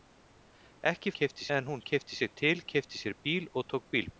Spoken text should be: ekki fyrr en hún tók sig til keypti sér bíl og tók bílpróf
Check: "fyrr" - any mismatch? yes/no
yes